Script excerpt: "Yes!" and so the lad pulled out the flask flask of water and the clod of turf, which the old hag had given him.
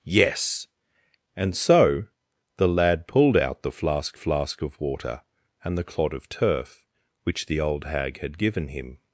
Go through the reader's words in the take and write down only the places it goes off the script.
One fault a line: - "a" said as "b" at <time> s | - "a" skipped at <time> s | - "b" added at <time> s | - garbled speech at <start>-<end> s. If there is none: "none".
none